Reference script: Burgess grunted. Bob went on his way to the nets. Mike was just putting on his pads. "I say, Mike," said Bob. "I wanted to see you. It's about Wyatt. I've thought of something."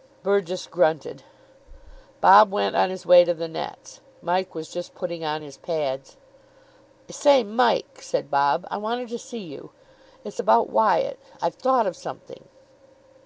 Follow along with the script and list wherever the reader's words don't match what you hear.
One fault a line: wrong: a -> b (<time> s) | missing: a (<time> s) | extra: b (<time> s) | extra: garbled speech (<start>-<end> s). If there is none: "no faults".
no faults